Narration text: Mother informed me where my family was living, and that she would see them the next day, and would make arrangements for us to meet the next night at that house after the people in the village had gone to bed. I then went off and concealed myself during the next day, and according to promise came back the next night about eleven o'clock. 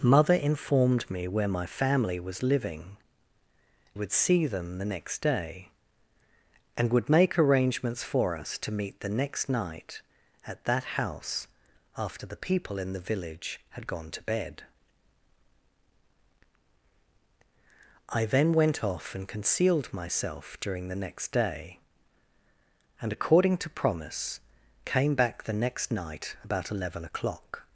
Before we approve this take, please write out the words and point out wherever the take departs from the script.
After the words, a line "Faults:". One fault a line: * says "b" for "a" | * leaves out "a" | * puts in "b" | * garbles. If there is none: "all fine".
Mother informed me where my family was living, would see them the next day, and would make arrangements for us to meet the next night at that house after the people in the village had gone to bed. I then went off and concealed myself during the next day, and according to promise came back the next night about eleven o'clock.
Faults:
* leaves out "and that she"